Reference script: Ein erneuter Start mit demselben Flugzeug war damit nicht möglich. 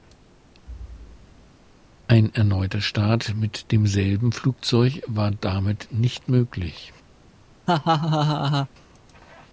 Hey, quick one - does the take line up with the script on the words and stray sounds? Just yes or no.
no